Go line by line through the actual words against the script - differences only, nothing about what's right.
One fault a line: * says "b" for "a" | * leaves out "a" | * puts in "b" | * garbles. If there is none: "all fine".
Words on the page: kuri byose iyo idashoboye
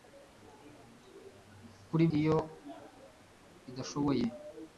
* leaves out "byose"